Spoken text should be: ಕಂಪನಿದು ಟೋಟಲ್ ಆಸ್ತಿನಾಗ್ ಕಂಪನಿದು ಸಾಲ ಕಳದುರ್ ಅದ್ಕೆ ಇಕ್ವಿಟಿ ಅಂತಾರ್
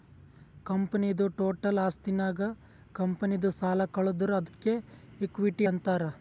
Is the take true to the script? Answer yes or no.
yes